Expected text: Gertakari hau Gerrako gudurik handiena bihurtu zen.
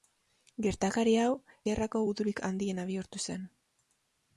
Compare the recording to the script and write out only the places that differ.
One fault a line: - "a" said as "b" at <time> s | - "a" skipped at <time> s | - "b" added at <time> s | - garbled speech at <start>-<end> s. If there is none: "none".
none